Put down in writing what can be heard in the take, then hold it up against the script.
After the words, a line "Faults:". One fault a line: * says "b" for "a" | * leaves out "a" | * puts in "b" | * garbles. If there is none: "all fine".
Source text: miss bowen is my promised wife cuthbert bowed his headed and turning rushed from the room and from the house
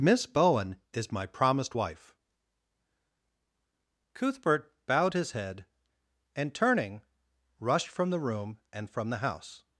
miss bowen is my promised wife cuthbert bowed his head and turning rushed from the room and from the house
Faults:
* says "head" for "headed"